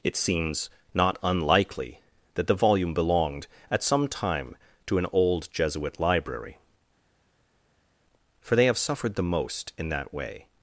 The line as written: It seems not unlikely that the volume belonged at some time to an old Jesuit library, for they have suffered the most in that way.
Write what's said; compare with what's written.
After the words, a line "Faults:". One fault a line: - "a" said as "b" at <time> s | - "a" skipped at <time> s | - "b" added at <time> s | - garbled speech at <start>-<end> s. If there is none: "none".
It seems not unlikely that the volume belonged at some time to an old Jesuit library, for they have suffered the most in that way.
Faults:
none